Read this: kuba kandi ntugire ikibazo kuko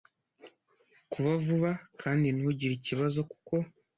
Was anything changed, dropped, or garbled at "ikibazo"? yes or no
no